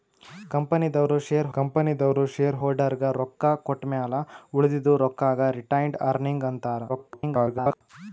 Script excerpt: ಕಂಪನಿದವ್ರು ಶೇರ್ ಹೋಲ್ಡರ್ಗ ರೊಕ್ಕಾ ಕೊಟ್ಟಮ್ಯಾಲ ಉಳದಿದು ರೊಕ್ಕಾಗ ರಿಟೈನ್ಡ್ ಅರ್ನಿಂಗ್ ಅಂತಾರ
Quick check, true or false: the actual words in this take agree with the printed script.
false